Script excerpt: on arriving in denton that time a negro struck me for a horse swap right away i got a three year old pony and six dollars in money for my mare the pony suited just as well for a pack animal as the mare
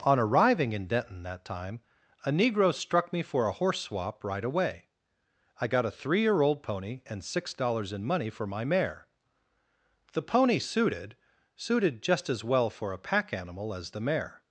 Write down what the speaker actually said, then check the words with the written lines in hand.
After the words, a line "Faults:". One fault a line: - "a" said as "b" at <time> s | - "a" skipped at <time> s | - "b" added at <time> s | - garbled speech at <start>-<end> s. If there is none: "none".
on arriving in denton that time a negro struck me for a horse swap right away i got a three year old pony and six dollars in money for my mare the pony suited suited just as well for a pack animal as the mare
Faults:
- "suited" added at 11.6 s